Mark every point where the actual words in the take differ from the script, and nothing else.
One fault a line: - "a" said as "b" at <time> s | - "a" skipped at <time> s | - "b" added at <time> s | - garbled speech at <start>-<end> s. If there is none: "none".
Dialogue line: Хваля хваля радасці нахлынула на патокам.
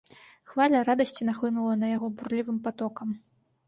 - "хваля" skipped at 0.8 s
- "яго бурлівым" added at 1.9 s